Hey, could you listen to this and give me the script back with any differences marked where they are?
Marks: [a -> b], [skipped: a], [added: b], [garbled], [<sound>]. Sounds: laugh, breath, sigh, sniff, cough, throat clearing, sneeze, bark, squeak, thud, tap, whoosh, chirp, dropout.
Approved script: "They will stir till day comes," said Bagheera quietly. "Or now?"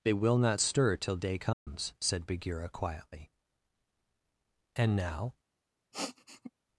"They will [added: not] stir till day comes," [dropout] said Bagheera quietly. ["Or -> And] now?" [sniff]